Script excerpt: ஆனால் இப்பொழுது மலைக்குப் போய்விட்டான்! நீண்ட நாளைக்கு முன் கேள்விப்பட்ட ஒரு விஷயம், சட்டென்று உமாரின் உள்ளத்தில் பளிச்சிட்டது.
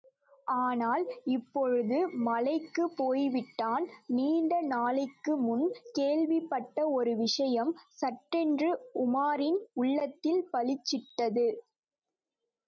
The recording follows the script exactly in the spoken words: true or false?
true